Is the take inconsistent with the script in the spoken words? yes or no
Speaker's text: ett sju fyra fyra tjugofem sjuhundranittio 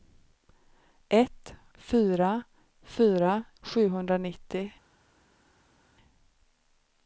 yes